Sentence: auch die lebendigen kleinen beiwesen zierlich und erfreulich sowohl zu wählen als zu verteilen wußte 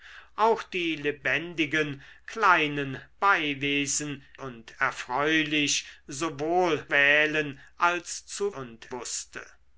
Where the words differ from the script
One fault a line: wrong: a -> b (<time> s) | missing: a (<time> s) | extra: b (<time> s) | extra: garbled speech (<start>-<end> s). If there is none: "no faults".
missing: zierlich (4.2 s)
missing: zu (6.9 s)
wrong: verteilen -> und (8.5 s)